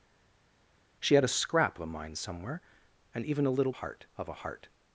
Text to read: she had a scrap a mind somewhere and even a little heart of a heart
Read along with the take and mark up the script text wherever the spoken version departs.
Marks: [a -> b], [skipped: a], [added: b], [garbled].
she had a scrap a mind somewhere and even a little heart of a heart